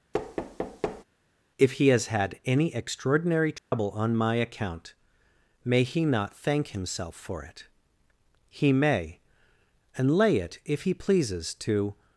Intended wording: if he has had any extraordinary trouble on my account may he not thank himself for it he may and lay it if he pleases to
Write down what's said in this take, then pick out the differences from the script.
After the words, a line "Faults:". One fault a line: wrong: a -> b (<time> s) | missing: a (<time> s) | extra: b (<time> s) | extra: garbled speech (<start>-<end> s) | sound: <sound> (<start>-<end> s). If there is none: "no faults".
if he has had any extraordinary trouble on my account may he not thank himself for it he may and lay it if he pleases to
Faults:
sound: thud (0.1-1.0 s)
sound: dropout (3.6-3.7 s)